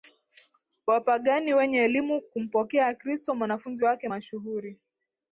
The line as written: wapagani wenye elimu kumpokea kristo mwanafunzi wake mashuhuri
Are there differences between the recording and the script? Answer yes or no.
no